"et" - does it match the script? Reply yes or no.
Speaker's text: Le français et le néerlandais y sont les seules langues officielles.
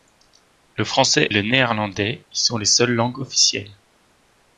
no